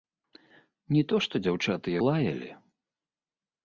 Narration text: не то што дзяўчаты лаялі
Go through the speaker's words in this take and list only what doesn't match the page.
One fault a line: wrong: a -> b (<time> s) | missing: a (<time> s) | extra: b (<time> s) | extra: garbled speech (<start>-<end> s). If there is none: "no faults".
no faults